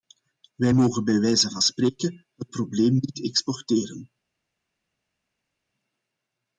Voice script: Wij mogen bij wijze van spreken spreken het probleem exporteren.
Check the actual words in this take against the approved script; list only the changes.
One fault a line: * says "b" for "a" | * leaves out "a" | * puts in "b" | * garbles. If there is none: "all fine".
* leaves out "spreken"
* puts in "niet"